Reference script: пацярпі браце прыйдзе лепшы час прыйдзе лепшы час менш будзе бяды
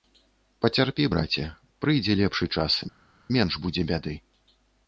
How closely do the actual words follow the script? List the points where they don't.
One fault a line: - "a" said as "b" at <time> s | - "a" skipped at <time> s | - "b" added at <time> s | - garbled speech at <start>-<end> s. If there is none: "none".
- "прыйдзе лепшы час" skipped at 2.8 s